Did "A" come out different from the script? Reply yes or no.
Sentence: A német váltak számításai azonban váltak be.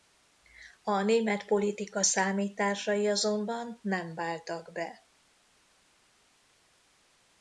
no